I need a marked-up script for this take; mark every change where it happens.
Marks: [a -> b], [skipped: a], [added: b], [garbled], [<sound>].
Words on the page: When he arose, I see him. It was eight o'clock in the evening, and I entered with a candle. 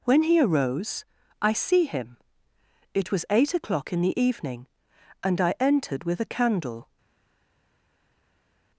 When he arose, I see him. It was eight o'clock in the evening, and I entered with a candle.